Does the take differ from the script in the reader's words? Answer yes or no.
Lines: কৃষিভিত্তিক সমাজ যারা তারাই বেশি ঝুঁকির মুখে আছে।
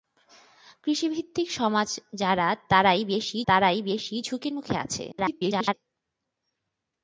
yes